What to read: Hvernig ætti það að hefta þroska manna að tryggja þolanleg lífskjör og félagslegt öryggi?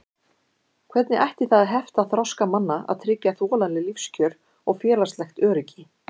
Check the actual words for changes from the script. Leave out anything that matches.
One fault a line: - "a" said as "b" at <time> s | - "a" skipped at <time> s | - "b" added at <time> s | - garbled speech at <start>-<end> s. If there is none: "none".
none